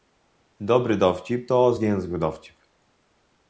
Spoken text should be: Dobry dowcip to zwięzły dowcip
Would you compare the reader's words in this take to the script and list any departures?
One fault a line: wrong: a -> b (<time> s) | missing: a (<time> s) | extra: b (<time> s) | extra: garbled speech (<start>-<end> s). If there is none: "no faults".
no faults